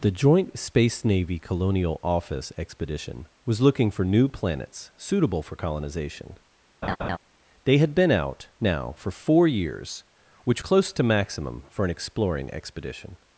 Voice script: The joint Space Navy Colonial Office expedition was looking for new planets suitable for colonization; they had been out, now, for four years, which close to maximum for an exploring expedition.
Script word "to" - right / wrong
right